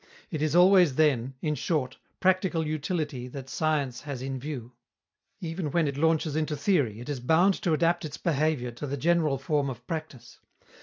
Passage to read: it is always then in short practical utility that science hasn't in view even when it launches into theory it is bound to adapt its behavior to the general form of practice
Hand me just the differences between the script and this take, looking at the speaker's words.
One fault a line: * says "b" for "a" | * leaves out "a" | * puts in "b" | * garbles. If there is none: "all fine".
* says "has" for "hasn't"